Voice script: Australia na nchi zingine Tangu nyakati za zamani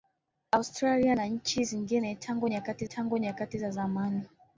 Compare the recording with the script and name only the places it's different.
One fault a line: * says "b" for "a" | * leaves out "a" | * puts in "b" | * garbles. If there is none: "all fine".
* puts in "Tangu nyakati"